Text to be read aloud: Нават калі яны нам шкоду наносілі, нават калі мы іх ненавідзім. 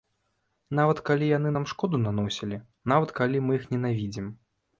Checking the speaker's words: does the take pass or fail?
pass